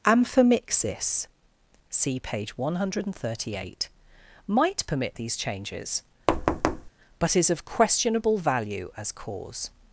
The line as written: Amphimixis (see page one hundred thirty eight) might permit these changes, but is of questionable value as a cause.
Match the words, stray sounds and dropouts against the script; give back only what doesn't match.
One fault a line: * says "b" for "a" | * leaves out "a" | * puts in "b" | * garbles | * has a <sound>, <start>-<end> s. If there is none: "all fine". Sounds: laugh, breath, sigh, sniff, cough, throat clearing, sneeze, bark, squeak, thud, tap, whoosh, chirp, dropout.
* has a thud, 6.3-6.9 s
* leaves out "a"